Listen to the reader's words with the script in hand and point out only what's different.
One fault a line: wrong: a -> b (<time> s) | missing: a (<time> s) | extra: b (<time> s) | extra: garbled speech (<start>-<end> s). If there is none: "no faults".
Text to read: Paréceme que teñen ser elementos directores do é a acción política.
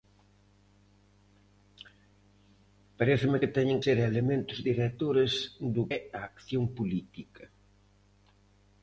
no faults